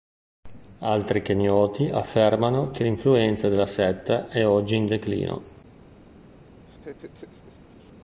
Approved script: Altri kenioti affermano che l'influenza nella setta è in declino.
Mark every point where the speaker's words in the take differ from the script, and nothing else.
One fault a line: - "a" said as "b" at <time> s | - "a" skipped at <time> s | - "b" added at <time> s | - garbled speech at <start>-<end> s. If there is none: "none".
- "nella" said as "della" at 3.5 s
- "oggi" added at 4.5 s